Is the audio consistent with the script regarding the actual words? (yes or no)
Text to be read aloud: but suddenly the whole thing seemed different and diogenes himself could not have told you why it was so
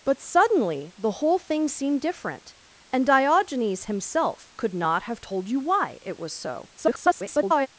no